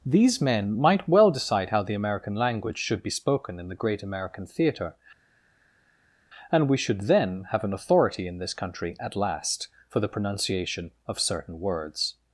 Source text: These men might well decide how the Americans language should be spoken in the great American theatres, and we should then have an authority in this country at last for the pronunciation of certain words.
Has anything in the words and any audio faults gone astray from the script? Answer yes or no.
yes